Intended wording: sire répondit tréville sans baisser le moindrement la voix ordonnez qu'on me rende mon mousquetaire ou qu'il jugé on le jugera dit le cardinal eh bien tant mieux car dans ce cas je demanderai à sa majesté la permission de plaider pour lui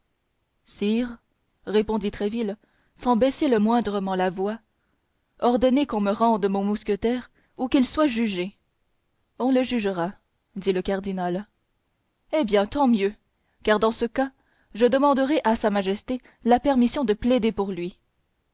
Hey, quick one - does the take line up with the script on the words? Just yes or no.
no